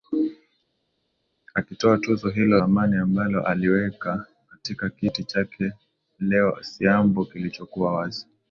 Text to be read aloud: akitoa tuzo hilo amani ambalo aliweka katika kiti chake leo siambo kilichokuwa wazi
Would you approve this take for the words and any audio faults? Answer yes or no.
yes